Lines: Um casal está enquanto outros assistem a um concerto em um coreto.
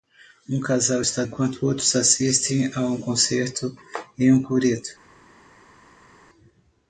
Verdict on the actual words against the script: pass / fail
pass